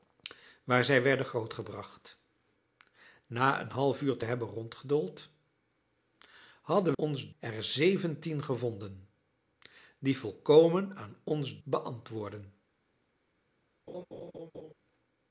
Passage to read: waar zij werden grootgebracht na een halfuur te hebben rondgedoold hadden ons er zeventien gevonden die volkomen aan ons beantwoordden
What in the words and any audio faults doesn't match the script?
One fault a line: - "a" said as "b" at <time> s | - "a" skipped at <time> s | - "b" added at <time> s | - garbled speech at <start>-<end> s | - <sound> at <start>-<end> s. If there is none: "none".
- laugh at 13.9-14.7 s